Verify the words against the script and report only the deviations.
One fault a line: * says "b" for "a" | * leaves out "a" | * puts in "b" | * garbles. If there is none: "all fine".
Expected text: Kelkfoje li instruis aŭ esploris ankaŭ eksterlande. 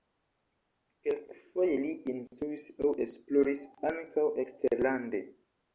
all fine